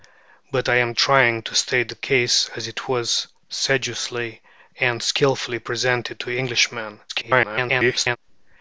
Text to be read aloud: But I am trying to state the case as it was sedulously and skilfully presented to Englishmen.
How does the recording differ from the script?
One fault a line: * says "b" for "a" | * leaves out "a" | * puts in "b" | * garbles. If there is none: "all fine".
* garbles